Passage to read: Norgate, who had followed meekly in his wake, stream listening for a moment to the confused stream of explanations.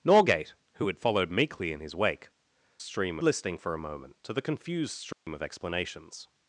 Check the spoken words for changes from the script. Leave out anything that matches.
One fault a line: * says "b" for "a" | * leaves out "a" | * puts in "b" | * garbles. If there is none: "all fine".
all fine